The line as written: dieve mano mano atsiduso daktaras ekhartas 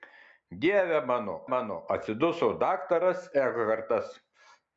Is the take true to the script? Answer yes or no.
yes